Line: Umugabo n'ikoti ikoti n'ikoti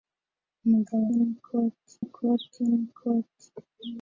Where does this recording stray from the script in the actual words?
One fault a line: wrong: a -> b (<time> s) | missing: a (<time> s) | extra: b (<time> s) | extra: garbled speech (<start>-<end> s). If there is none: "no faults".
no faults